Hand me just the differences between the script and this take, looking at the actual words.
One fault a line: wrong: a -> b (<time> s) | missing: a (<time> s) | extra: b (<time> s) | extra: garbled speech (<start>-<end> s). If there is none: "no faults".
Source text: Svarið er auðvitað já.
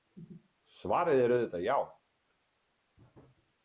no faults